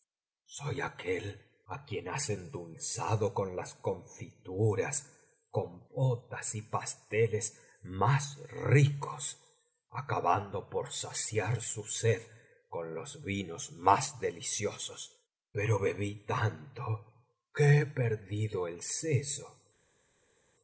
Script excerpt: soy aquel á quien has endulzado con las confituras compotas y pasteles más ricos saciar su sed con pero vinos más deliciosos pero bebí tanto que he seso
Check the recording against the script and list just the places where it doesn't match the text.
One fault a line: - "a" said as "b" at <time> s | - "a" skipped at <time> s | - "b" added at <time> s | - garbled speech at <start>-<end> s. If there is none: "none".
- "acabando por" added at 9.9 s
- "pero" said as "los" at 12.9 s
- "perdido el" added at 17.9 s